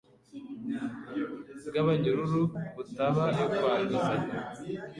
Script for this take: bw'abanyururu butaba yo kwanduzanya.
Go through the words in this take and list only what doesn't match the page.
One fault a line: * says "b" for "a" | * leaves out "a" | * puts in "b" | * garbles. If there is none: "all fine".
all fine